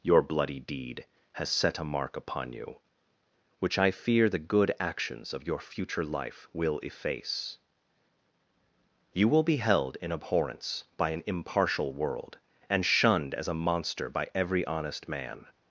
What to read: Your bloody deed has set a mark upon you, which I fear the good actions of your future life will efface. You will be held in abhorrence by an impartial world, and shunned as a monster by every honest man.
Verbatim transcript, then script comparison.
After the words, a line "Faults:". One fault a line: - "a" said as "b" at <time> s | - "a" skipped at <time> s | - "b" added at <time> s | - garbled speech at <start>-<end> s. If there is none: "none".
Your bloody deed has set a mark upon you, which I fear the good actions of your future life will efface. You will be held in abhorrence by an impartial world, and shunned as a monster by every honest man.
Faults:
none